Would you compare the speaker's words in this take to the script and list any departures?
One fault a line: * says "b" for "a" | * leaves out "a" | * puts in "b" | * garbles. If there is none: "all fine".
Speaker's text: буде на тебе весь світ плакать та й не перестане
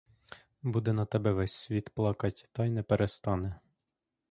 all fine